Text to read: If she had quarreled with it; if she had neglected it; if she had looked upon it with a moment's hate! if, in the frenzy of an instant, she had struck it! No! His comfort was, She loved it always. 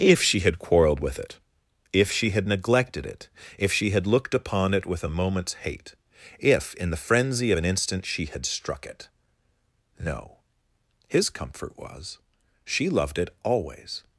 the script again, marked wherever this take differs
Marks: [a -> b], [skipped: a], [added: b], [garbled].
If she had quarreled with it; if she had neglected it; if she had looked upon it with a moment's hate! if, in the frenzy of an instant, she had struck it! No! His comfort was, She loved it always.